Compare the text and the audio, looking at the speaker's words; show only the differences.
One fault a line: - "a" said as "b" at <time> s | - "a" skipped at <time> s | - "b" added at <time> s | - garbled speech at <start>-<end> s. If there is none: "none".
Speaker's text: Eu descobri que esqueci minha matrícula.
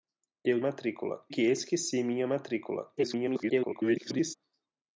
- "descobri" said as "matrícula" at 0.6 s
- garbled speech at 3.0-4.3 s